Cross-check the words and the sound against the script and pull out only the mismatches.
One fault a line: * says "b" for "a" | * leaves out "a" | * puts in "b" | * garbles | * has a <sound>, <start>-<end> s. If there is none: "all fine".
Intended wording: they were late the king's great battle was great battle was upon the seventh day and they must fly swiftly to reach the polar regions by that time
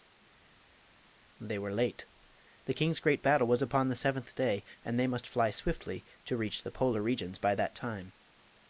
* leaves out "great battle was"